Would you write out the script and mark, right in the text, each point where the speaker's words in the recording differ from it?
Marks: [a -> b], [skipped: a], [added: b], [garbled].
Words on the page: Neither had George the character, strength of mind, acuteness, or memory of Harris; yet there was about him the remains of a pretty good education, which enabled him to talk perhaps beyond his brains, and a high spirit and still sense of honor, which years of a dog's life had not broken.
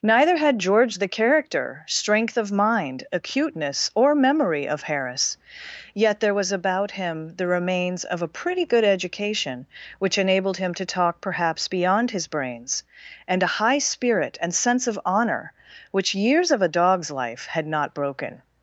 Neither had George the character, strength of mind, acuteness, or memory of Harris; yet there was about him the remains of a pretty good education, which enabled him to talk perhaps beyond his brains, and a high spirit and [skipped: still] sense of honor, which years of a dog's life had not broken.